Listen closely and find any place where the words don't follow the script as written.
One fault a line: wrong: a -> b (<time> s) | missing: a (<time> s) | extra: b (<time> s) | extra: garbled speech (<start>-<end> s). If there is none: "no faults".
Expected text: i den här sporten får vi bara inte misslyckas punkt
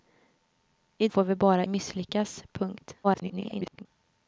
missing: den här sporten (1.1 s)
missing: inte (1.6 s)
extra: garbled speech (3.0-3.9 s)